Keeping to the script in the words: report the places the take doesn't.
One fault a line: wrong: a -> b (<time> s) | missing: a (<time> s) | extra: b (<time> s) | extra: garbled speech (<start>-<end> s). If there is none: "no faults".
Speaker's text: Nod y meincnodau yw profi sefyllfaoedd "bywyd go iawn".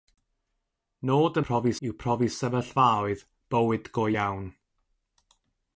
wrong: meincnodau -> profi (1.5 s)